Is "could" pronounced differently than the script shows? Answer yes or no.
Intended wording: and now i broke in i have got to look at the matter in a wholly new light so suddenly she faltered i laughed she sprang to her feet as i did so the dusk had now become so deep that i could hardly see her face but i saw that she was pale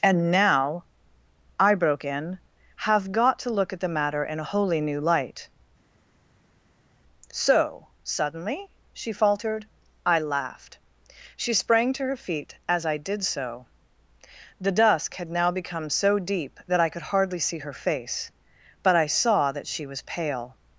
no